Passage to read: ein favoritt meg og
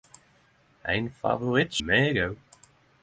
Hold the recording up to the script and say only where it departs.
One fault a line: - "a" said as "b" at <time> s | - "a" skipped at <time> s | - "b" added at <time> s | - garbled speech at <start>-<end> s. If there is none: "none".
none